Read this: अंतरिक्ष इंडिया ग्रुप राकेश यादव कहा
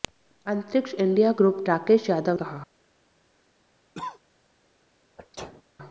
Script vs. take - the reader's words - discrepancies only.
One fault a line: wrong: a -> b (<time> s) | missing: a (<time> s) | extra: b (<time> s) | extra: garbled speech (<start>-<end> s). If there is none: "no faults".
no faults